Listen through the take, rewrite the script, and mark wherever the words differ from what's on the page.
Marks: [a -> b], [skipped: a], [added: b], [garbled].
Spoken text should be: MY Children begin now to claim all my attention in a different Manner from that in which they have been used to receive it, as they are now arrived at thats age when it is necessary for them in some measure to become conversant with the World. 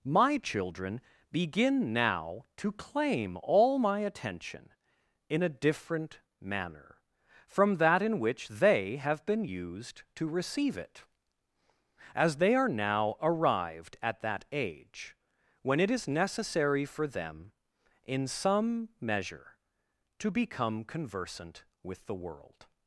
MY Children begin now to claim all my attention in a different Manner from that in which they have been used to receive it, as they are now arrived at [thats -> that] age when it is necessary for them in some measure to become conversant with the World.